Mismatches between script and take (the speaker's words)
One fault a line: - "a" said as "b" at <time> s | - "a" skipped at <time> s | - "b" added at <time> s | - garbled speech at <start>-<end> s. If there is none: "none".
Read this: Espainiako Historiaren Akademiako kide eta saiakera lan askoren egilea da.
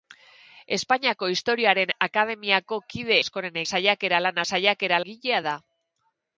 - "eta" said as "askoren" at 3.2 s
- "askoren" said as "saiakera" at 4.5 s